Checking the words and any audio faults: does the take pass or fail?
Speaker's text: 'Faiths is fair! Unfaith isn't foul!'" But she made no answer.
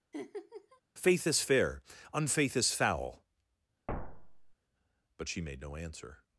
fail